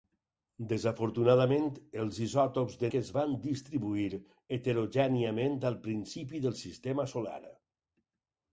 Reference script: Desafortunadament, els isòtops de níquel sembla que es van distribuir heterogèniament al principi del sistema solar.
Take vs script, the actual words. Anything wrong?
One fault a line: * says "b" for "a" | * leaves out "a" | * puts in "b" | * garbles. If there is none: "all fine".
* leaves out "níquel sembla"